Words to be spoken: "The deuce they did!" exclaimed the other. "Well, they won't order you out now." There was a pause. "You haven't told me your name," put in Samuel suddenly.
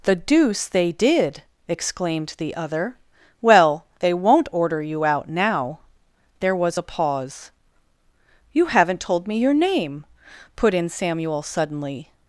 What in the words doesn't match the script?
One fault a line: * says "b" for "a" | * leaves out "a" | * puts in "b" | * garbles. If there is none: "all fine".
all fine